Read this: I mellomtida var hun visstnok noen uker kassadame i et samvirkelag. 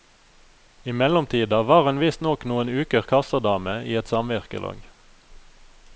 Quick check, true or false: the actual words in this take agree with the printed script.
true